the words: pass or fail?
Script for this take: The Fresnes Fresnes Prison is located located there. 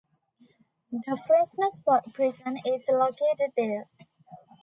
fail